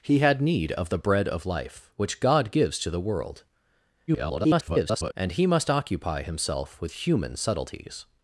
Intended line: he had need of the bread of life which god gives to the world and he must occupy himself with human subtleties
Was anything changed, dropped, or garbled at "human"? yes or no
no